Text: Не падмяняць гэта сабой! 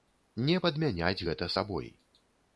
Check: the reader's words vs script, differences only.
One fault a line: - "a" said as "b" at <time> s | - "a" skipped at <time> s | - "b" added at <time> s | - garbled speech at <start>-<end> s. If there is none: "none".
none